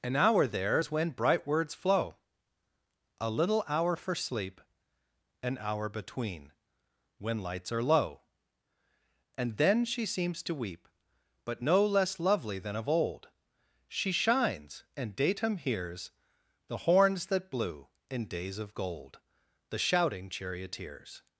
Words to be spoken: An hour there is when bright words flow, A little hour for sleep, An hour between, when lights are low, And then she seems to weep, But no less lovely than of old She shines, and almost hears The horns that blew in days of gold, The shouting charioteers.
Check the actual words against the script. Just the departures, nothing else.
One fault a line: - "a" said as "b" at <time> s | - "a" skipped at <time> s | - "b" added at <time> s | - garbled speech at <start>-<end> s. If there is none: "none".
- "almost" said as "datum" at 15.2 s